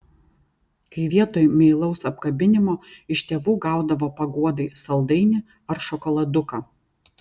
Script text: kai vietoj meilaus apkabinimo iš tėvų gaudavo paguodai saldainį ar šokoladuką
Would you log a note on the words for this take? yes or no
no